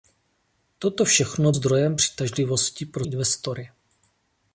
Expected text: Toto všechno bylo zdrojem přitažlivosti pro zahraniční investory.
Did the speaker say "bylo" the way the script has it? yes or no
no